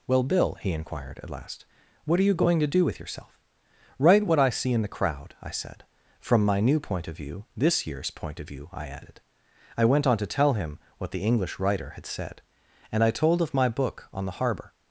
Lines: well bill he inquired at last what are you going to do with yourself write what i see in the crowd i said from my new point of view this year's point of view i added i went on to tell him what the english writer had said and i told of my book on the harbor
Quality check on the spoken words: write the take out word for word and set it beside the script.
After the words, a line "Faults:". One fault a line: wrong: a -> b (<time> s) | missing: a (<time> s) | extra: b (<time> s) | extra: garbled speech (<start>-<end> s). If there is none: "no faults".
well bill he inquired at last what are you going to do with yourself write what i see in the crowd i said from my new point of view this year's point of view i added i went on to tell him what the english writer had said and i told of my book on the harbor
Faults:
no faults